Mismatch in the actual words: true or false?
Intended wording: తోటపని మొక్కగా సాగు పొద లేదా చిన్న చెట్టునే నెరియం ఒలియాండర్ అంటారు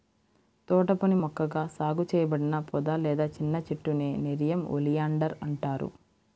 true